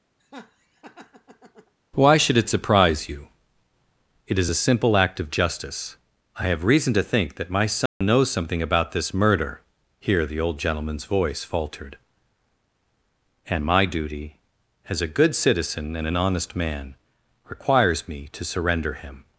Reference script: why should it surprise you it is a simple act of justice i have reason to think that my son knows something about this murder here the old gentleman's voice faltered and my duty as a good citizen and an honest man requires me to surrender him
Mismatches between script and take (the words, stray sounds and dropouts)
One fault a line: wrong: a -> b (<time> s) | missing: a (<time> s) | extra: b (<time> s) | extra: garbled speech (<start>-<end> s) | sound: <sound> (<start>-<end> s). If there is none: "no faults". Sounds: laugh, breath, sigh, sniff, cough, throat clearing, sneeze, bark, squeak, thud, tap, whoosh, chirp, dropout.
sound: laugh (0.2-1.7 s)
sound: dropout (7.9-8.0 s)